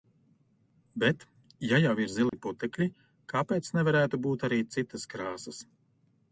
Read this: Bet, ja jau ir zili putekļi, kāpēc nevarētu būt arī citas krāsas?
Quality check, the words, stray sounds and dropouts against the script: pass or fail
fail